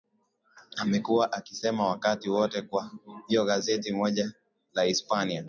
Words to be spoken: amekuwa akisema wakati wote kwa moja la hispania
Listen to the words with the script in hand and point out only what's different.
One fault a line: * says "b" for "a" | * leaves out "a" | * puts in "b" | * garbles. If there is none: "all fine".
* puts in "hiyo gazeti"